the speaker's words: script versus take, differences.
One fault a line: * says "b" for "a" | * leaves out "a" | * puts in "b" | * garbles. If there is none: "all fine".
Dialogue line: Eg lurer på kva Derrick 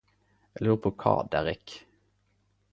all fine